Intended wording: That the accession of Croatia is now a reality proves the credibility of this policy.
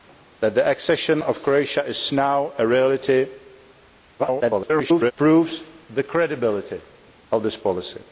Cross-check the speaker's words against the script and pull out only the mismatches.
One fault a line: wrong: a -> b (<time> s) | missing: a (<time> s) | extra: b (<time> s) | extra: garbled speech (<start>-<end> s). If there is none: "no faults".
extra: garbled speech (4.2-5.1 s)